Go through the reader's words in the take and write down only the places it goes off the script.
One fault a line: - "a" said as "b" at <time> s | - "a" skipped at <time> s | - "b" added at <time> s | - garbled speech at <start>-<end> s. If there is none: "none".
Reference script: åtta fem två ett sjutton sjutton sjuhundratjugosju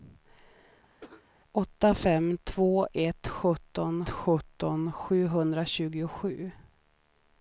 none